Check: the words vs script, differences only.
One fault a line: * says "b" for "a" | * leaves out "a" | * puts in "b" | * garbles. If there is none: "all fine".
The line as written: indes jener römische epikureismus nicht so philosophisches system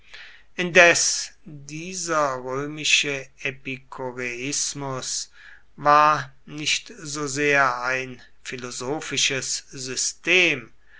* says "dieser" for "jener"
* puts in "war"
* puts in "sehr ein"